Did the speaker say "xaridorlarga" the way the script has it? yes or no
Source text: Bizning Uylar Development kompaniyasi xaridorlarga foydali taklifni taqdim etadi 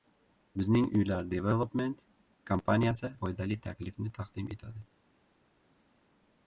no